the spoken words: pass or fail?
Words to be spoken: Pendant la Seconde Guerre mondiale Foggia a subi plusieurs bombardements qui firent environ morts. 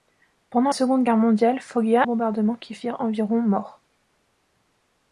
fail